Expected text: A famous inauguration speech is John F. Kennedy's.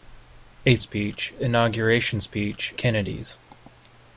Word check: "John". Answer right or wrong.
wrong